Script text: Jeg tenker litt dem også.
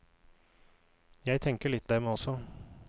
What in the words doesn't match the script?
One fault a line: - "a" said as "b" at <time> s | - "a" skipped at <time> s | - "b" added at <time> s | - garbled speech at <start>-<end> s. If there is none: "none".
none